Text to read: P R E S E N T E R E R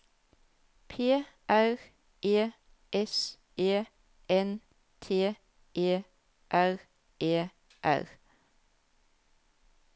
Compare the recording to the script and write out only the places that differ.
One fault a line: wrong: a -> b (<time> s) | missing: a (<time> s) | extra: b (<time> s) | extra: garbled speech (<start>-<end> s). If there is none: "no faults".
no faults